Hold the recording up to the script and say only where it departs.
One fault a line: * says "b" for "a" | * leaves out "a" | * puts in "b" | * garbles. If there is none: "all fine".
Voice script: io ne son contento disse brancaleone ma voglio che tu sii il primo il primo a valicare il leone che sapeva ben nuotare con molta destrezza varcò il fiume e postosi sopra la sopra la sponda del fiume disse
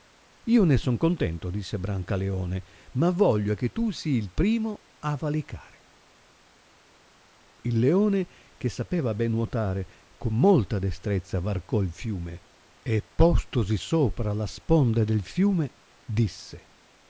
* leaves out "il primo"
* leaves out "sopra la"